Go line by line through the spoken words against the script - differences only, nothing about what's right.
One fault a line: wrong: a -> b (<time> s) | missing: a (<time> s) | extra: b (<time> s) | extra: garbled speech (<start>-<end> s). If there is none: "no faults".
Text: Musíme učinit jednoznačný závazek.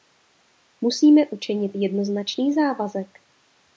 no faults